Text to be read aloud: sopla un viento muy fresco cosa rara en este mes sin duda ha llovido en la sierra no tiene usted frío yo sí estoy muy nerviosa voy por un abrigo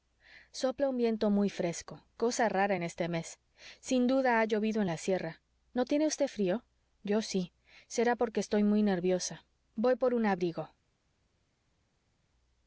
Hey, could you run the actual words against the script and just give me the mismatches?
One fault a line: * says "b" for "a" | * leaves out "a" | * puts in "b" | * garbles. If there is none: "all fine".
* puts in "será porque"